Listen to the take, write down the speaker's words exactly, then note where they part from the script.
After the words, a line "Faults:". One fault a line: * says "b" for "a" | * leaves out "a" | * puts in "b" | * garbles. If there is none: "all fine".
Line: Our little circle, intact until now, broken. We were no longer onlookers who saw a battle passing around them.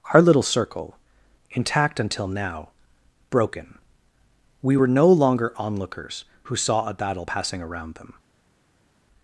Our little circle, intact until now, broken. We were no longer onlookers who saw a battle passing around them.
Faults:
all fine